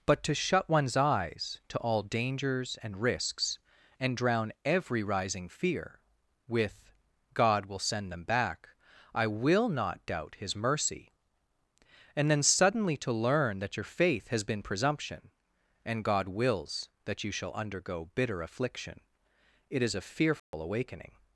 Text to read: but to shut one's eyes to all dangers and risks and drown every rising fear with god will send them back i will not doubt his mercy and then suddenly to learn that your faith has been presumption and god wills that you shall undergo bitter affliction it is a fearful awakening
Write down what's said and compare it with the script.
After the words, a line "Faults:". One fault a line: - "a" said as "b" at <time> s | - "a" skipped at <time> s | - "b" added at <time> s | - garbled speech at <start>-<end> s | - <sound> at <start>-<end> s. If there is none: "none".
but to shut one's eyes to all dangers and risks and drown every rising fear with god will send them back i will not doubt his mercy and then suddenly to learn that your faith has been presumption and god wills that you shall undergo bitter affliction it is a fearful awakening
Faults:
- dropout at 20.4-20.5 s